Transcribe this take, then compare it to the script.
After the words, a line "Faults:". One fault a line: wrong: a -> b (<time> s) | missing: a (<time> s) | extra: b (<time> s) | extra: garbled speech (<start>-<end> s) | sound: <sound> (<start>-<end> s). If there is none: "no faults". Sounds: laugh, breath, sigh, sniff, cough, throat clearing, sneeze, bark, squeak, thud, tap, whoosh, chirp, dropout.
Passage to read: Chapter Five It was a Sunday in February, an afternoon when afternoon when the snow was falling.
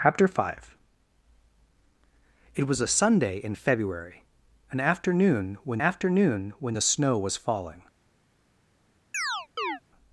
Chapter Five It was a Sunday in February, an afternoon when afternoon when the snow was falling.
Faults:
sound: chirp (9.1-9.8 s)